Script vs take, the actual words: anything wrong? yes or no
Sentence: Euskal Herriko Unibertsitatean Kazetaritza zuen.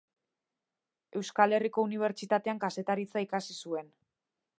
yes